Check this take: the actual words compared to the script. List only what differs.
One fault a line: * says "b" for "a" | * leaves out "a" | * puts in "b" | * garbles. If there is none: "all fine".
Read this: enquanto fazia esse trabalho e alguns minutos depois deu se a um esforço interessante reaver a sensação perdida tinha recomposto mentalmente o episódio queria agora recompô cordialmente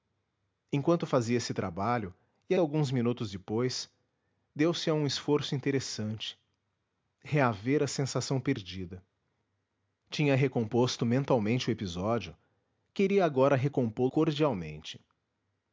all fine